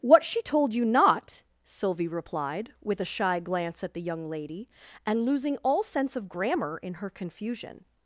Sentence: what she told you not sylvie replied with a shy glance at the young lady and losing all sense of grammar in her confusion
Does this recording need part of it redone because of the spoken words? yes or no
no